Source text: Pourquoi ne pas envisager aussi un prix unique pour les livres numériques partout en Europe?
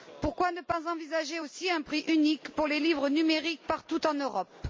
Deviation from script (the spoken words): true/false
false